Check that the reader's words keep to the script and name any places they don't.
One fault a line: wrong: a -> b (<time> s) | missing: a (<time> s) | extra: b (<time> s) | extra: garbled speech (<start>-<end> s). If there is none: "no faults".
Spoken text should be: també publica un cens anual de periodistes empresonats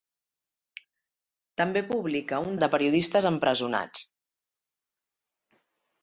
missing: cens anual (2.5 s)